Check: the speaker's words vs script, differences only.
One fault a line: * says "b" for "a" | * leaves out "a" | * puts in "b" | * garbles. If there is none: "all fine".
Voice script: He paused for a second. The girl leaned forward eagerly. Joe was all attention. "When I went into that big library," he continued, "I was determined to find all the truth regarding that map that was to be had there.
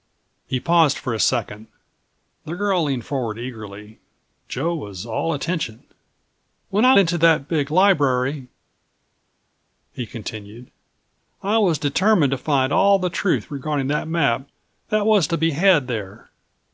* leaves out "went"